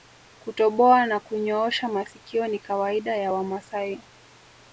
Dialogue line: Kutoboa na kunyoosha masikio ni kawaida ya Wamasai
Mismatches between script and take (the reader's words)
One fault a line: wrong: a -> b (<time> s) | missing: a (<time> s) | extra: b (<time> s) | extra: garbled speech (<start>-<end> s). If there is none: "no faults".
no faults